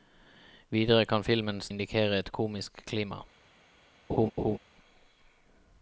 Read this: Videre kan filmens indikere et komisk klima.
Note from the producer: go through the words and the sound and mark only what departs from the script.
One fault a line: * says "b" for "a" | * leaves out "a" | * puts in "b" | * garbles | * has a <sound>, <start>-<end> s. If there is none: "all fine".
* has a laugh, 4.1-4.6 s